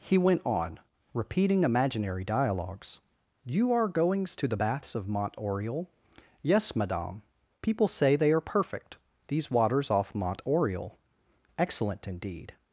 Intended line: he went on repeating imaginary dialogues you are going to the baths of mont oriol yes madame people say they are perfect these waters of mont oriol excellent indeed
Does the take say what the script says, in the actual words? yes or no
no